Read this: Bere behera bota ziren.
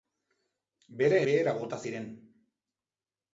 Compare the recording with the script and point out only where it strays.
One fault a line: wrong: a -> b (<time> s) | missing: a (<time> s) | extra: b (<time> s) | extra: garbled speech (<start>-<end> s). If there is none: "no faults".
no faults